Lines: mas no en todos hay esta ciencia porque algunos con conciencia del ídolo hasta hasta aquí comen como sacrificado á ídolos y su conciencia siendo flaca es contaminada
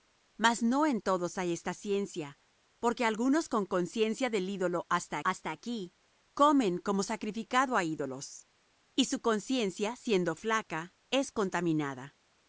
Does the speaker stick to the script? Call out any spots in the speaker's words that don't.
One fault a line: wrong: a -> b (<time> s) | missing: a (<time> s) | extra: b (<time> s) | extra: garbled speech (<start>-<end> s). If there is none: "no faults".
no faults